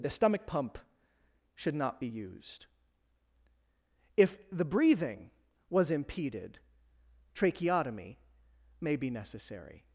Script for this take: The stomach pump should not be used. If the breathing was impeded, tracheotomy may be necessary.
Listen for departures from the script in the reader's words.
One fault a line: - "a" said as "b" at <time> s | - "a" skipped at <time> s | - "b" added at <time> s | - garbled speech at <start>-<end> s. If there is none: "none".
none